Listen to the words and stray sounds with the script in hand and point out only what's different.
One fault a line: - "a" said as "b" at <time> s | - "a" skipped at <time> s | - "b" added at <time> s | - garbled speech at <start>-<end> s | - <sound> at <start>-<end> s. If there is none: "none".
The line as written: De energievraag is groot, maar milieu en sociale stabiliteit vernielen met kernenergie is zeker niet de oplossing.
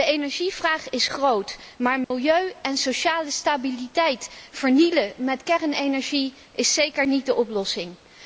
- dropout at 2.0-2.1 s